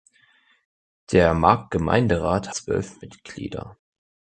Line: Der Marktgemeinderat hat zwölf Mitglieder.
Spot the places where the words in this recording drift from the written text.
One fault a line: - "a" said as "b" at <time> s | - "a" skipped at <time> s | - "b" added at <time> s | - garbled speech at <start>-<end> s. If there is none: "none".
- "hat" skipped at 2.5 s